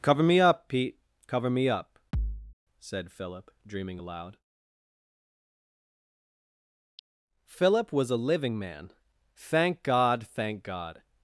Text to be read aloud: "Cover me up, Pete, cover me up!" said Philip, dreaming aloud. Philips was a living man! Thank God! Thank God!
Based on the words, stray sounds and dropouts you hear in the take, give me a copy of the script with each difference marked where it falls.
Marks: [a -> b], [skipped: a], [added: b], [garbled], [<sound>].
"Cover me up, Pete, cover me up!" [thud] said Philip, dreaming aloud. [Philips -> Philip] was a living man! Thank God! Thank God!